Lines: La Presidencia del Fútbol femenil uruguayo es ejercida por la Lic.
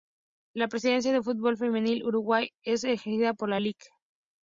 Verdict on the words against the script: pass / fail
pass